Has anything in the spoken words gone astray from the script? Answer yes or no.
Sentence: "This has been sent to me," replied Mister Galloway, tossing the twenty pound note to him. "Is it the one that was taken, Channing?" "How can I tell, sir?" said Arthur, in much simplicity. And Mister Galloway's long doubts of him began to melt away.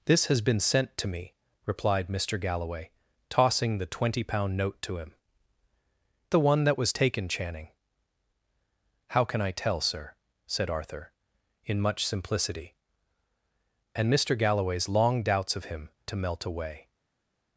yes